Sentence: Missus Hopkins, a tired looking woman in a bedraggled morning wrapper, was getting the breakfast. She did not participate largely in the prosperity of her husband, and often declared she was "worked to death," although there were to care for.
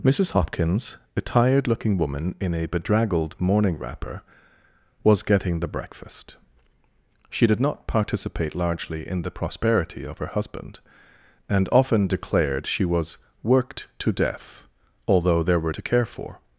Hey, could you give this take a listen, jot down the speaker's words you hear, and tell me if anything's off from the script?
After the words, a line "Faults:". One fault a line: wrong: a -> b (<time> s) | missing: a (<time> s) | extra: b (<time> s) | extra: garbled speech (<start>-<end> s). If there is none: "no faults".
Missus Hopkins, a tired looking woman in a bedraggled morning wrapper, was getting the breakfast. She did not participate largely in the prosperity of her husband, and often declared she was "worked to death," although there were to care for.
Faults:
no faults